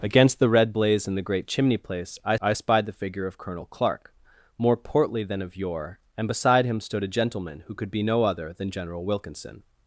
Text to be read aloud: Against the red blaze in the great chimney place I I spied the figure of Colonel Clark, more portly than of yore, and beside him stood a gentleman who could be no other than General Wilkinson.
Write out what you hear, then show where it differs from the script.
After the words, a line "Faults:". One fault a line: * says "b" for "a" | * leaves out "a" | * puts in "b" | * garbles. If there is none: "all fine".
Against the red blaze in the great chimney place I I spied the figure of Colonel Clark, more portly than of yore, and beside him stood a gentleman who could be no other than General Wilkinson.
Faults:
all fine